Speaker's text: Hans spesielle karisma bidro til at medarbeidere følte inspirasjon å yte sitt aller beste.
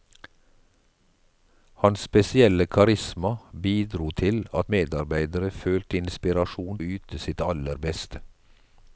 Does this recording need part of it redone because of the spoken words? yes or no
no